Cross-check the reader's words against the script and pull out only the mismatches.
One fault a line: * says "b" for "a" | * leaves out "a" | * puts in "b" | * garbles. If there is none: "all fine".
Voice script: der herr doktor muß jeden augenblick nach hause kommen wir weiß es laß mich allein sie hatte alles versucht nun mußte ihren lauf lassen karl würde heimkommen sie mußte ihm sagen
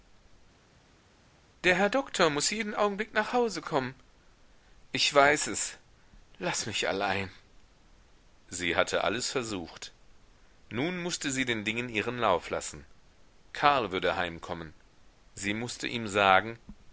* says "ich" for "wir"
* puts in "sie den dingen"